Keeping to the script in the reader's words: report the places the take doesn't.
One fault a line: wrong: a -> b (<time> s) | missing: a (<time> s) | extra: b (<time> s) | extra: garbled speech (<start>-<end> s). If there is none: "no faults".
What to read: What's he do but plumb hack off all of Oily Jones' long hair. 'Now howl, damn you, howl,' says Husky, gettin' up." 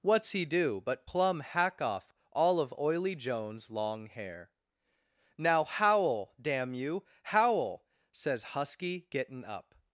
no faults